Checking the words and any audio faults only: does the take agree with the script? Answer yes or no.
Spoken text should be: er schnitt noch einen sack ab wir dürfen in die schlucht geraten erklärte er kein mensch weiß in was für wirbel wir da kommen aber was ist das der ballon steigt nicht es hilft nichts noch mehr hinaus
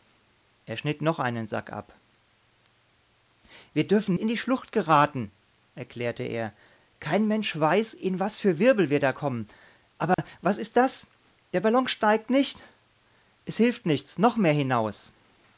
no